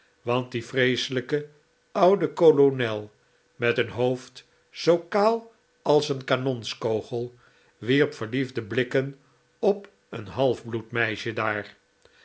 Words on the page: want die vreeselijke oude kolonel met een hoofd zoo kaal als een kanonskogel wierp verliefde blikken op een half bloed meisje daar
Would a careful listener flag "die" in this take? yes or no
no